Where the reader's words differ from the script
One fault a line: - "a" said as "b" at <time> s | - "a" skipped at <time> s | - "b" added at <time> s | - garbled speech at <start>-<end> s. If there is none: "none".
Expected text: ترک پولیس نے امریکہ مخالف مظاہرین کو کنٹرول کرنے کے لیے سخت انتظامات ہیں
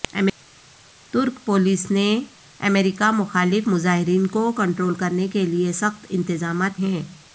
none